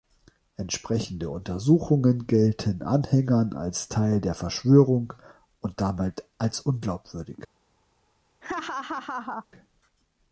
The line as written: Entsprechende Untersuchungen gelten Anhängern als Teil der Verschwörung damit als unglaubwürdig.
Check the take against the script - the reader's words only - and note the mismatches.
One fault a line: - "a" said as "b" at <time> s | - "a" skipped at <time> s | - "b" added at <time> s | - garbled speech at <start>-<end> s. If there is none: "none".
- "und" added at 5.6 s